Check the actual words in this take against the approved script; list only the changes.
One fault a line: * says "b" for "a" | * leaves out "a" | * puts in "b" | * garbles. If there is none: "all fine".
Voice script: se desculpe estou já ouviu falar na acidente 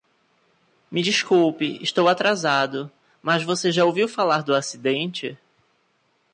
* says "me" for "se"
* puts in "atrasado mas você"
* says "do" for "na"